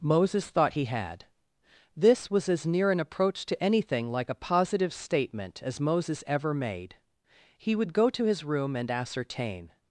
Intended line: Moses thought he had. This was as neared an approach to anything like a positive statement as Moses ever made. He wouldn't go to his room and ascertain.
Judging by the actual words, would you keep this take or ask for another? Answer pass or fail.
fail